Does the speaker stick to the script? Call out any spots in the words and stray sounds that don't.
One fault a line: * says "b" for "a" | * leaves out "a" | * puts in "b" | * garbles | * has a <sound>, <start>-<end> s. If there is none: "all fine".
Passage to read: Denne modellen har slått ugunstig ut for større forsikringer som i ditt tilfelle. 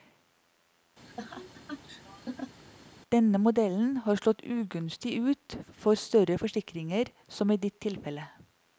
* has a laugh, 1.0-2.6 s